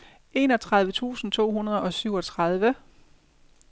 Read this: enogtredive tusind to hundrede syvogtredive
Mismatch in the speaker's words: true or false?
true